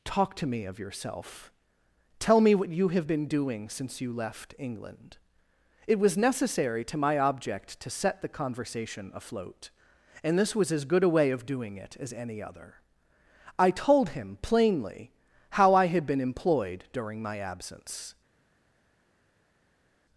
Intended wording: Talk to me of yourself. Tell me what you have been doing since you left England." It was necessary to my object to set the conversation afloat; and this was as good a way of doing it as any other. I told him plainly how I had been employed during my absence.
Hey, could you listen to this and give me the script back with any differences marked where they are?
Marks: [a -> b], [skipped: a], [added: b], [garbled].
Talk to me of yourself. Tell me what you have been doing since you left England." It was necessary to my object to set the conversation afloat; and this was as good a way of doing it as any other. I told him plainly how I had been employed during my absence.